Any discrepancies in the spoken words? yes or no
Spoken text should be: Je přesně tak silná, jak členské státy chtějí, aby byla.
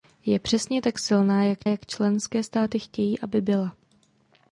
yes